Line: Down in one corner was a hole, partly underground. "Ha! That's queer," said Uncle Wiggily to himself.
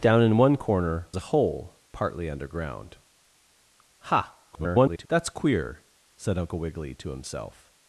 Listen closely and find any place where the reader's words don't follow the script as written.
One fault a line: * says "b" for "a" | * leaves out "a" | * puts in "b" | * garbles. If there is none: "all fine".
* leaves out "was"
* garbles